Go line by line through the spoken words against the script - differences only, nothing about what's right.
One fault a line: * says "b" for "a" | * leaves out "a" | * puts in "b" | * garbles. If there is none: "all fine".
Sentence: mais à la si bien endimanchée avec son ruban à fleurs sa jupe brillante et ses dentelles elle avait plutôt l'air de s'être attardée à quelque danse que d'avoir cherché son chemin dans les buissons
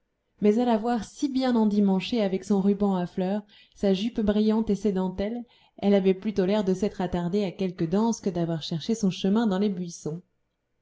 * puts in "voir"